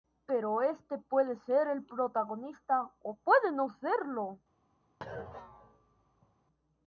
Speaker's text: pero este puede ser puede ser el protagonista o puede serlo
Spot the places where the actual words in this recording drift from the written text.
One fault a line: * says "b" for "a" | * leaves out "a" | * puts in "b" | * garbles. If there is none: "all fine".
* leaves out "puede ser"
* puts in "no"